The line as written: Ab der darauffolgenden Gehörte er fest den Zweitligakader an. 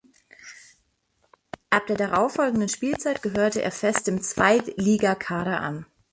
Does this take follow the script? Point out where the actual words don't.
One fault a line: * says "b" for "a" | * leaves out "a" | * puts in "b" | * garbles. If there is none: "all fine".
* puts in "Spielzeit"
* says "dem" for "den"